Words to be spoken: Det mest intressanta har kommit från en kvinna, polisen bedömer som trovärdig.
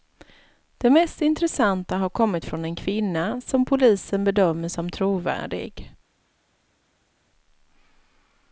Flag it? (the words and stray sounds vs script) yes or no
yes